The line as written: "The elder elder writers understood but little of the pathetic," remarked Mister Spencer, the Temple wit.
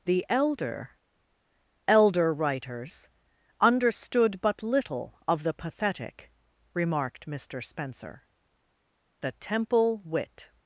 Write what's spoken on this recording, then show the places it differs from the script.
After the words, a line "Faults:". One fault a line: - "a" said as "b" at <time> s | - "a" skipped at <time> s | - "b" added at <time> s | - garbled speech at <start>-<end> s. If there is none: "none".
"The elder elder writers understood but little of the pathetic," remarked Mister Spencer, the Temple wit.
Faults:
none